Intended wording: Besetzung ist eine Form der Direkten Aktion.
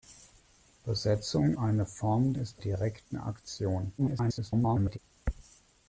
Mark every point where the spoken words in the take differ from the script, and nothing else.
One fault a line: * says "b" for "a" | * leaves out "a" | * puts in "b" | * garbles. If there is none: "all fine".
* leaves out "ist"
* says "ist" for "der"
* garbles